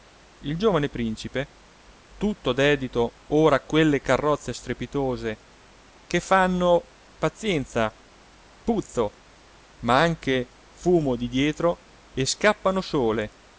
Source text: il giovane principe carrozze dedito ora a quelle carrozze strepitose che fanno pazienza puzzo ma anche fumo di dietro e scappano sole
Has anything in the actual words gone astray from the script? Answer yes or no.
yes